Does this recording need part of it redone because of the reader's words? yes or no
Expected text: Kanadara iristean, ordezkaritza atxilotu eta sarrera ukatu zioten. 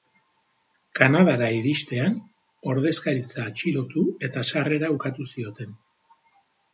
no